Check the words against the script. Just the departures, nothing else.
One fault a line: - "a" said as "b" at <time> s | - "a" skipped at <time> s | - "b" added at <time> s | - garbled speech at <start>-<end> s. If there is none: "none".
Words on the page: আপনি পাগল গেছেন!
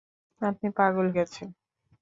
none